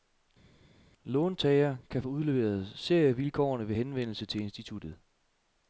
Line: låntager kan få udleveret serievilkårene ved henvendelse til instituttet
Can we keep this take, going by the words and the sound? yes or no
yes